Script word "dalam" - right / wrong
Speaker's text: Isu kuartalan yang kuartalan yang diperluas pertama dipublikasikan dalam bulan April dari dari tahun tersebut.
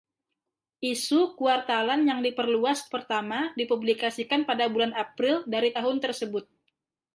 wrong